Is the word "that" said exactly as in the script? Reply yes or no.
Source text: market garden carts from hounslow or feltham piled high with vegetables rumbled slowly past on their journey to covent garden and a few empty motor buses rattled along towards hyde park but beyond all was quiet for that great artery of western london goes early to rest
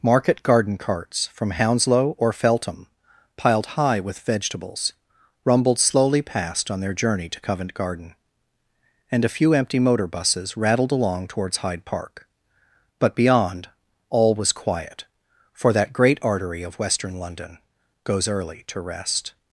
yes